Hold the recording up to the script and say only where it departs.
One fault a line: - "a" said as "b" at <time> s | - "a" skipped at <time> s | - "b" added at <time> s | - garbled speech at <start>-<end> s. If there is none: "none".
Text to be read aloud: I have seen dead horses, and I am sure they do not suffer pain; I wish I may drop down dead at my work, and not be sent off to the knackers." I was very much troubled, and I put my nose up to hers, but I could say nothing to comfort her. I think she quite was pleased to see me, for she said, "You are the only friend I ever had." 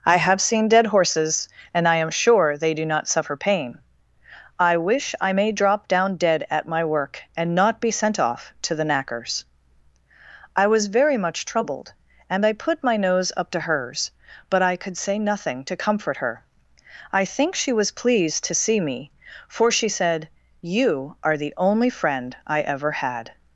- "quite" skipped at 17.7 s